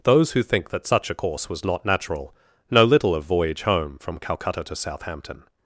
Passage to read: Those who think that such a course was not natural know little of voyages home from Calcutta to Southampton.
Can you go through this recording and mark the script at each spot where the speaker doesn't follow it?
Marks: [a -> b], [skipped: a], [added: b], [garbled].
Those who think that such a course was not natural know little of [voyages -> voyage] home from Calcutta to Southampton.